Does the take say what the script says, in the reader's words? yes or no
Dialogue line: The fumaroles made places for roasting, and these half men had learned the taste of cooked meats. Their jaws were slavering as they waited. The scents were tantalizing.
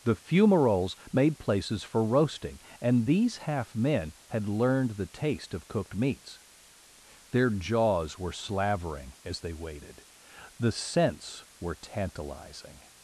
yes